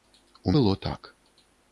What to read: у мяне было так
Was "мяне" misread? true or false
true